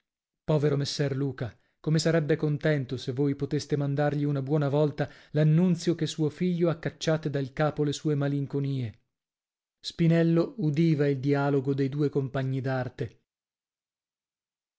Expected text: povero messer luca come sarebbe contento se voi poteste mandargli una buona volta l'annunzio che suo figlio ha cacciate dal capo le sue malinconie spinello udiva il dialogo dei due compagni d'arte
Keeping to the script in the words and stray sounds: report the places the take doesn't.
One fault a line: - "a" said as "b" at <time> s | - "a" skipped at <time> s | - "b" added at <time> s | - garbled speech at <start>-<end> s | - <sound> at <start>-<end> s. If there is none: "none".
none